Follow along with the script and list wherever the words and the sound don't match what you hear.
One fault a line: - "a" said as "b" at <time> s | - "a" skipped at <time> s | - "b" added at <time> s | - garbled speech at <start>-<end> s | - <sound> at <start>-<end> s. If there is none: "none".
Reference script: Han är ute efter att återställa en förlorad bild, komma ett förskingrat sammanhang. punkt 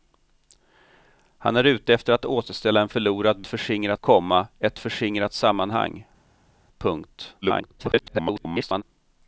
- "bild" said as "förskingrat" at 3.5 s
- garbled speech at 7.4-8.8 s